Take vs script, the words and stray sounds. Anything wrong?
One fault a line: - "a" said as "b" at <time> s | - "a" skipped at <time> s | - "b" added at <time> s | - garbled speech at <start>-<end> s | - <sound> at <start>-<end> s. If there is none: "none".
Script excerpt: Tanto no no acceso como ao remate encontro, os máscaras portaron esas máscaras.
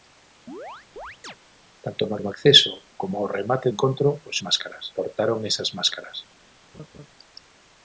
- chirp at 0.5-1.4 s
- laugh at 6.7-7.1 s